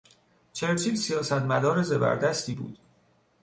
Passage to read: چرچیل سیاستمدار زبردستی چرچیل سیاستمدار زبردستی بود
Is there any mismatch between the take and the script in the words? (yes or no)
yes